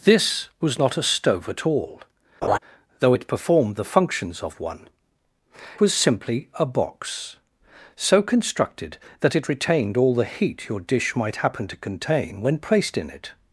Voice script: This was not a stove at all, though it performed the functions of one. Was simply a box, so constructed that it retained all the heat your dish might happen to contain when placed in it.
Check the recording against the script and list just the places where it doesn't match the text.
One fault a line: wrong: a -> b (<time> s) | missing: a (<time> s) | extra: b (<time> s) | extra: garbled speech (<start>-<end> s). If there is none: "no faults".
no faults